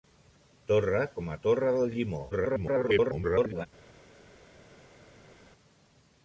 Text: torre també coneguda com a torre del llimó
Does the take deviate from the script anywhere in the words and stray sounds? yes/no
yes